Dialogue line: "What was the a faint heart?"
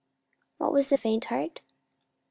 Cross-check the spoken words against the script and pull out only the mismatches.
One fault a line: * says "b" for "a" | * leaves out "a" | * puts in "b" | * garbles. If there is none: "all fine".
all fine